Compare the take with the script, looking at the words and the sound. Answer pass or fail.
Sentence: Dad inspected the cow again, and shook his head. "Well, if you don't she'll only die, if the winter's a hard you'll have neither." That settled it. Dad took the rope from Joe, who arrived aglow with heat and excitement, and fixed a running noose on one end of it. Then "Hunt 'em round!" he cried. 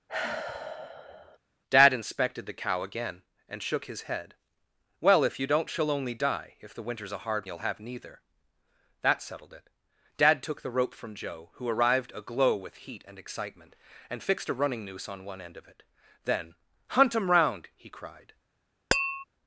fail